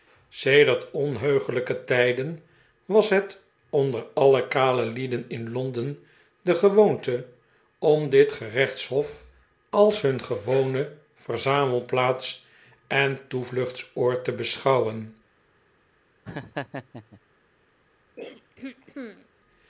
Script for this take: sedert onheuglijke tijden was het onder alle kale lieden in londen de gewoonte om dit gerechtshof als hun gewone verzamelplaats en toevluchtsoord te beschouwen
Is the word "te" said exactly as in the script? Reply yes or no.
yes